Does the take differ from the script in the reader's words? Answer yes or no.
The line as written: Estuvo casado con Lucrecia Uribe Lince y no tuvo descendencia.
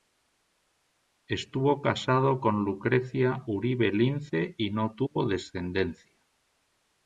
no